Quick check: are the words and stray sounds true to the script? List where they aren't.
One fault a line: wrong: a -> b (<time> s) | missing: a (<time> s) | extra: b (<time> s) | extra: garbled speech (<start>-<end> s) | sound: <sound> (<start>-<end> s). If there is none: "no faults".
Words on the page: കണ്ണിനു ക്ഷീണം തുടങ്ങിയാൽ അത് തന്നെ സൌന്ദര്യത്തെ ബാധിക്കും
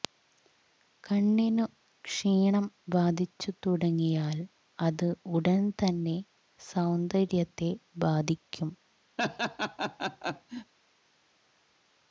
extra: ബാധിച്ചു (2.9 s)
extra: ഉടൻ (5.3 s)
sound: laugh (9.2-10.7 s)